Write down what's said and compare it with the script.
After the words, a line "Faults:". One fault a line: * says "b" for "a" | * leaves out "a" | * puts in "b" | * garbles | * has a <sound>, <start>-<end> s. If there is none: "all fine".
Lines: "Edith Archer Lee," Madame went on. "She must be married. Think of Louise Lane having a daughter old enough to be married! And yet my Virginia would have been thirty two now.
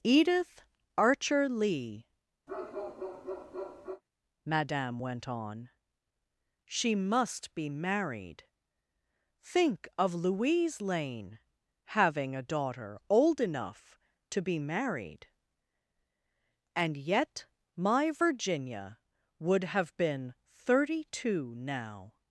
"Edith Archer Lee," Madame went on. "She must be married. Think of Louise Lane having a daughter old enough to be married! And yet my Virginia would have been thirty two now.
Faults:
* has a bark, 2.5-4.0 s